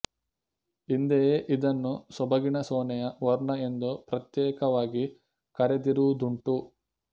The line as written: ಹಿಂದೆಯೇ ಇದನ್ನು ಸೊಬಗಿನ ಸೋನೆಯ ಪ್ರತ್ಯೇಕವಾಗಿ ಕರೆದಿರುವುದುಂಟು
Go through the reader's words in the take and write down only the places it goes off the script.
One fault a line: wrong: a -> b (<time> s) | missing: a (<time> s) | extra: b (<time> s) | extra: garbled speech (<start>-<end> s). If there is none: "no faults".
extra: ವರ್ಣ ಎಂದು (3.2 s)